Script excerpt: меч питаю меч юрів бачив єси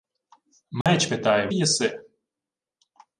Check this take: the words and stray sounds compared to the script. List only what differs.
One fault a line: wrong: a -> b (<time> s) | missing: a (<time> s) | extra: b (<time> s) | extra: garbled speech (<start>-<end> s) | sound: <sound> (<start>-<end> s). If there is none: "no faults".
sound: dropout (0.8-0.9 s)
missing: меч юрів бачив (1.5 s)